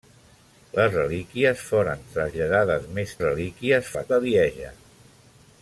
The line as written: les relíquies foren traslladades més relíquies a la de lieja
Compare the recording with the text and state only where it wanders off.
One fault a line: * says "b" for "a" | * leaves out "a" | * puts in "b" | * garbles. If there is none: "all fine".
all fine